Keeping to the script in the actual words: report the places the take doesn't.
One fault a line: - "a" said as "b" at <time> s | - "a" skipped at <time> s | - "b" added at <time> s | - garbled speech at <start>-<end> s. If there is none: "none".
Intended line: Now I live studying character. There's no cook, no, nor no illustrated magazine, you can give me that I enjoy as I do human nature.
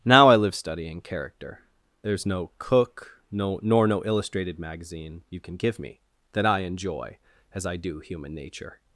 none